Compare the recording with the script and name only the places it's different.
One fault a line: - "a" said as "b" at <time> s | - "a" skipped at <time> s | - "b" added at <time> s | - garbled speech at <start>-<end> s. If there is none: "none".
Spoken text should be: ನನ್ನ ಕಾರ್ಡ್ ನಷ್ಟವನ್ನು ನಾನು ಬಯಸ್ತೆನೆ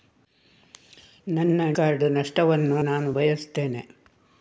none